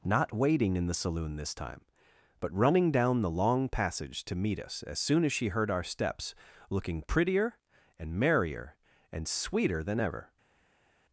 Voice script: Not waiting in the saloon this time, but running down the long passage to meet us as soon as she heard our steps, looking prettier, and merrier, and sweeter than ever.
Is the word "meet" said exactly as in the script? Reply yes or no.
yes